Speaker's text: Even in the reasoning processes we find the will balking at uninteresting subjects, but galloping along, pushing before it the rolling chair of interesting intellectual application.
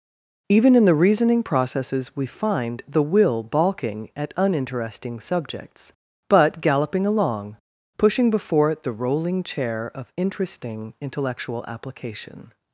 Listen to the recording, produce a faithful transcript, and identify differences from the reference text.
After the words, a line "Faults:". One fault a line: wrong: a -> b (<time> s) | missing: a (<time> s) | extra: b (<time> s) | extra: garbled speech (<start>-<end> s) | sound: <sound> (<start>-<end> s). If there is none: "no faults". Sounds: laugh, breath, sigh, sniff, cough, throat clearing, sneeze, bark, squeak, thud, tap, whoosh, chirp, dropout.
Even in the reasoning processes we find the will balking at uninteresting subjects, but galloping along, pushing before it the rolling chair of interesting intellectual application.
Faults:
no faults